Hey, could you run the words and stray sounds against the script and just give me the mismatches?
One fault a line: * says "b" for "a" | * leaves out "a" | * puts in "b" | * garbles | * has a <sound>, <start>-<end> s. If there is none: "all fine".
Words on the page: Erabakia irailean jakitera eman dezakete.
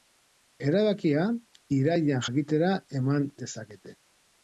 all fine